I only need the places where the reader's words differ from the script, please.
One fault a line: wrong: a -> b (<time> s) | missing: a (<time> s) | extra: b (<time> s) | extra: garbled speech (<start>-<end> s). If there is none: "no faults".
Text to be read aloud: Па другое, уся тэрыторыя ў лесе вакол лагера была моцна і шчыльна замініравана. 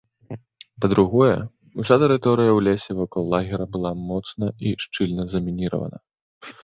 no faults